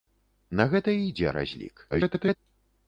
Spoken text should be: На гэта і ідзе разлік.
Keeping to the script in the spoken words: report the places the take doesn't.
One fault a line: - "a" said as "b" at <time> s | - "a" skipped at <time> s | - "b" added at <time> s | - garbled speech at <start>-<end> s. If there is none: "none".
- garbled speech at 1.9-2.4 s